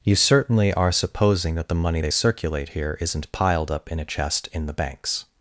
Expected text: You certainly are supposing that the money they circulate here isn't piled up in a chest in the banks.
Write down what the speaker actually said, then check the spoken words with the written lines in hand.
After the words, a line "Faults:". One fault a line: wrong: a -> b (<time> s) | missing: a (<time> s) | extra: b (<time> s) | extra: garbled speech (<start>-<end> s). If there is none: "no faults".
You certainly are supposing that the money they circulate here isn't piled up in a chest in the banks.
Faults:
no faults